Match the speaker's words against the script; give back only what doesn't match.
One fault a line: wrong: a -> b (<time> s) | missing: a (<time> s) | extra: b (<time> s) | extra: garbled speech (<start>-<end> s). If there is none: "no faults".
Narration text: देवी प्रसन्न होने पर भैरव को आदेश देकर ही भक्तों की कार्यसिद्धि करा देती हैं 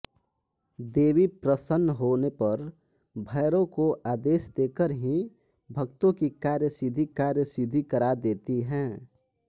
extra: कार्यसिद्धि (7.2 s)